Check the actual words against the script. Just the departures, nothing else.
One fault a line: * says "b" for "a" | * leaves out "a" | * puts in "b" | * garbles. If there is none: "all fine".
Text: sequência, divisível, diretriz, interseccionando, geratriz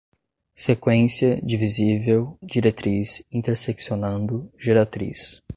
all fine